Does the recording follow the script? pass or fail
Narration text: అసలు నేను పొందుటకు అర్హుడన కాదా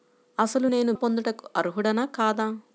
pass